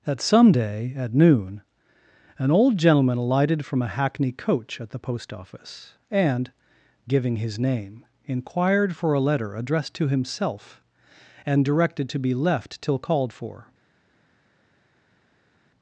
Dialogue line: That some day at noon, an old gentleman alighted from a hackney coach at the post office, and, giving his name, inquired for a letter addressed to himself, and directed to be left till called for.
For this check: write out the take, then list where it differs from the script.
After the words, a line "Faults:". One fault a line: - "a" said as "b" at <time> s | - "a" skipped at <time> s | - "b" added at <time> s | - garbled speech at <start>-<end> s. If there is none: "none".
That some day at noon, an old gentleman alighted from a hackney coach at the post office, and, giving his name, inquired for a letter addressed to himself, and directed to be left till called for.
Faults:
none